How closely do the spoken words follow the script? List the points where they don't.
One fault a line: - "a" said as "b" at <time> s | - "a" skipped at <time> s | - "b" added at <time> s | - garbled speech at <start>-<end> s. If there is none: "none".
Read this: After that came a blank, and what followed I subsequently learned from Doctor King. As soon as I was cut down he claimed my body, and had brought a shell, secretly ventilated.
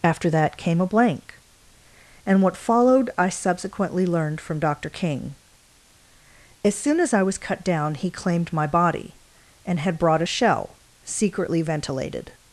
none